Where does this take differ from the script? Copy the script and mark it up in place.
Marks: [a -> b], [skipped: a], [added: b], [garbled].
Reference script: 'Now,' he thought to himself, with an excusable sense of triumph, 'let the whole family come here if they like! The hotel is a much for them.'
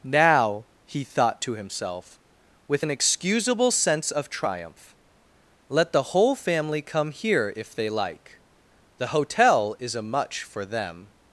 'Now,' he thought to himself, with an excusable sense of triumph, 'let the whole family come here if they like! The hotel is a much for them.'